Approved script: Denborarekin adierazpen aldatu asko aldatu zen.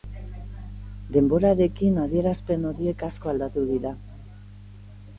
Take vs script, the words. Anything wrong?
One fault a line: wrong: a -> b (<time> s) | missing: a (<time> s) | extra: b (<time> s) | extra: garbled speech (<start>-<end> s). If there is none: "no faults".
wrong: aldatu -> horiek (2.7 s)
wrong: zen -> dira (3.8 s)